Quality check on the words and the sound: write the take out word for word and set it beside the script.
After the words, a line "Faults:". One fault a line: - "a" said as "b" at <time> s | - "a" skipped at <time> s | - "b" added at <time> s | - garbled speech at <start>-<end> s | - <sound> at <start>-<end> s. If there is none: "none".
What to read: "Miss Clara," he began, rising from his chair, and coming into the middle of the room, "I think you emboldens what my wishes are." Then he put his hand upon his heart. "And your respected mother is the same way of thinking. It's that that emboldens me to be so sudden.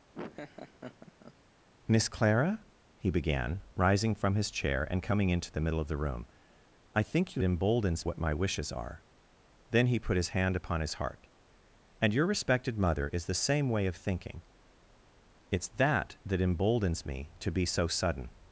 "Miss Clara," he began, rising from his chair, and coming into the middle of the room, "I think you emboldens what my wishes are." Then he put his hand upon his heart. "And your respected mother is the same way of thinking. It's that that emboldens me to be so sudden.
Faults:
- laugh at 0.1-1.3 s